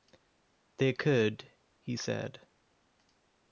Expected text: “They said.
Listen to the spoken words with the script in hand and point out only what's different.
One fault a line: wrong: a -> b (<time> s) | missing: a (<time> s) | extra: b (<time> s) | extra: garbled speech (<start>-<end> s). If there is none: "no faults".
extra: could he (0.9 s)